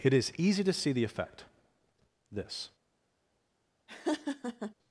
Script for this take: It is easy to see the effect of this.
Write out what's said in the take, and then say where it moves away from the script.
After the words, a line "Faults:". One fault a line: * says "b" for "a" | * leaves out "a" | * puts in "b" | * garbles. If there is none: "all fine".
It is easy to see the effect this.
Faults:
* leaves out "of"